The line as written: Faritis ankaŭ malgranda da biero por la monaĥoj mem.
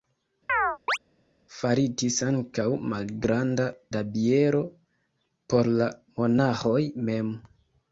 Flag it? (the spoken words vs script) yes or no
no